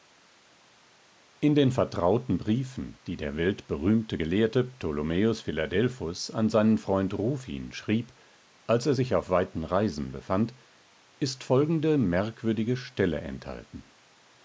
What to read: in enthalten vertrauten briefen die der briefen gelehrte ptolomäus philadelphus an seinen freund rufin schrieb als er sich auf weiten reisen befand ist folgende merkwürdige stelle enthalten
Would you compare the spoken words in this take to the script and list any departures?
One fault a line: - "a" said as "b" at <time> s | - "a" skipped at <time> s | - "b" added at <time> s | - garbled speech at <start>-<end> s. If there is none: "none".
- "enthalten" said as "den" at 1.5 s
- "briefen" said as "weltberühmte" at 3.4 s